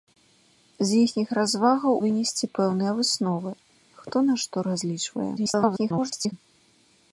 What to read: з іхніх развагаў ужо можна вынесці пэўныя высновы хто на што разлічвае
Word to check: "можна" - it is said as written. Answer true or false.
false